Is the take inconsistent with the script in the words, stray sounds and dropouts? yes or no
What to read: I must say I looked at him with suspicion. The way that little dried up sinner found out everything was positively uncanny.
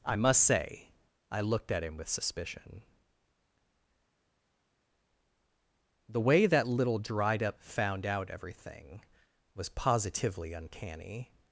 yes